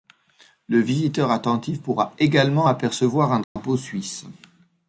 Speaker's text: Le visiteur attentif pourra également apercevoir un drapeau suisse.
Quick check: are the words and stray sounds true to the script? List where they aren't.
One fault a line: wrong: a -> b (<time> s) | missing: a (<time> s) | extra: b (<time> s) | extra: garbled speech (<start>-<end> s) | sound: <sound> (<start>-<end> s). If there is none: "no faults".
sound: dropout (3.4-3.6 s)